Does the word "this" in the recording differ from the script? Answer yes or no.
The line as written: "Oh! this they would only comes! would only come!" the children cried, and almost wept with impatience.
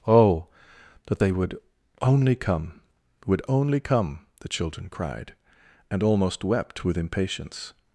yes